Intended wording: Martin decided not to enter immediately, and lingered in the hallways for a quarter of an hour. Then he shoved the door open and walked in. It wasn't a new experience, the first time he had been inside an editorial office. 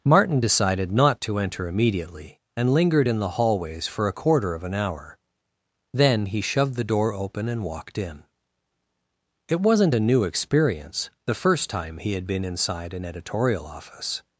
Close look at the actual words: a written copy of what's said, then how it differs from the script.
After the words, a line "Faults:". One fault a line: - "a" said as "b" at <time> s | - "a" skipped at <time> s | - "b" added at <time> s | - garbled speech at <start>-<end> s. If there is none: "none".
Martin decided not to enter immediately, and lingered in the hallways for a quarter of an hour. Then he shoved the door open and walked in. It wasn't a new experience, the first time he had been inside an editorial office.
Faults:
none